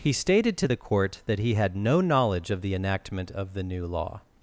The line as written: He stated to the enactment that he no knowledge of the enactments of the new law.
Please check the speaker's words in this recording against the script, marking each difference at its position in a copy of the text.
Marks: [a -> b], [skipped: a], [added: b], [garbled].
He stated to the [enactment -> court] that he [added: had] no knowledge of the [enactments -> enactment] of the new law.